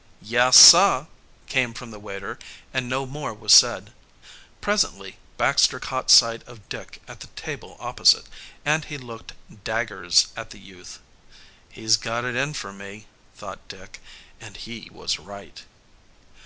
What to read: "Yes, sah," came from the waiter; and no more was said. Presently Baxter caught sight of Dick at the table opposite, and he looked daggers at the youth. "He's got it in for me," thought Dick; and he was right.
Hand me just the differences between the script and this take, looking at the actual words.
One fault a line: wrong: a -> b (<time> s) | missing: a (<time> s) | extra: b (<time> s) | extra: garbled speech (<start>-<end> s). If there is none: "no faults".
no faults